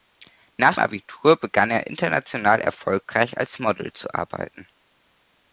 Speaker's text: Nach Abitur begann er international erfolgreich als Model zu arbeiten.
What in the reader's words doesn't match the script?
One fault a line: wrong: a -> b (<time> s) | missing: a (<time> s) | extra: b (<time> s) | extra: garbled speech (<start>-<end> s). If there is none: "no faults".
no faults